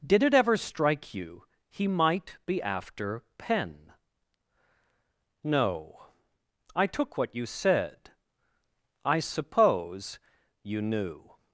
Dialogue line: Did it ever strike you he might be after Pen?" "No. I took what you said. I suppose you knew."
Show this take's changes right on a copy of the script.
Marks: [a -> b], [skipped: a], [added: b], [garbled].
Did it ever strike you he might be after Pen?" "No. I took what you said. I suppose you knew."